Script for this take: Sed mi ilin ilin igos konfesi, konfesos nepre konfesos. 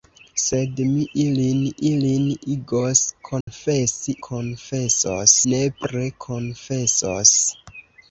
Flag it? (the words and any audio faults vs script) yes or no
yes